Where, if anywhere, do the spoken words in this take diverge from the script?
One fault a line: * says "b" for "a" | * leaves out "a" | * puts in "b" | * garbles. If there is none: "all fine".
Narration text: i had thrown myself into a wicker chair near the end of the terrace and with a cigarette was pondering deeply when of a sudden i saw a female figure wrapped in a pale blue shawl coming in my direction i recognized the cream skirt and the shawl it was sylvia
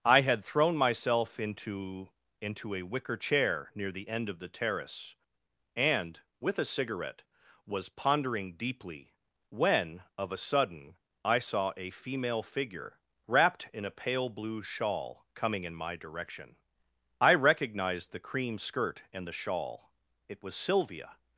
* puts in "into"